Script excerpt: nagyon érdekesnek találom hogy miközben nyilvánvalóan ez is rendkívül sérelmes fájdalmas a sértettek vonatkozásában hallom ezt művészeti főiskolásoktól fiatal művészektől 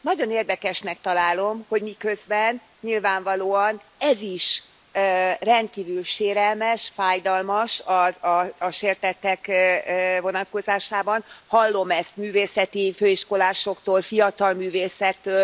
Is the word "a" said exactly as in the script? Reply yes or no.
yes